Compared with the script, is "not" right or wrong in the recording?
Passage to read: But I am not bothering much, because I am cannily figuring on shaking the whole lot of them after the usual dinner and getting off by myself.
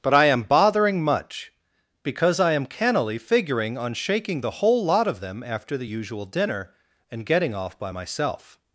wrong